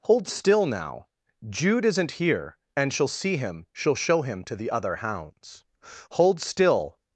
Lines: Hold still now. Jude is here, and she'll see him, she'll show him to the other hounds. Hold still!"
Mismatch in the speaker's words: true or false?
true